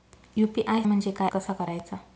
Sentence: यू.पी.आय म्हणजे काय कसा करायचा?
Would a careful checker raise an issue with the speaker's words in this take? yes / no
no